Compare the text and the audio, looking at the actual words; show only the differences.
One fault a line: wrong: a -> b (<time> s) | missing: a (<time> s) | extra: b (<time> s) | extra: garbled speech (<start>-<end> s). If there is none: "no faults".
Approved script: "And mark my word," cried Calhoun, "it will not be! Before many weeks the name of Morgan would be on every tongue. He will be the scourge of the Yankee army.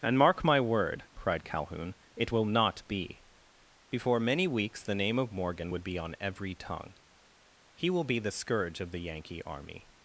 no faults